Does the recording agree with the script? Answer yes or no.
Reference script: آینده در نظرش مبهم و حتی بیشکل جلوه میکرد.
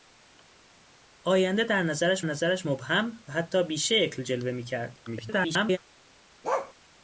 no